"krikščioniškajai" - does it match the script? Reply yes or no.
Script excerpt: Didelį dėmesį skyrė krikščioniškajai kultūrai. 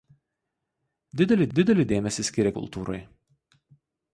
no